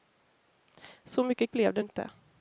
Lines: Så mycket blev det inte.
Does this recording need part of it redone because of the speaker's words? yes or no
no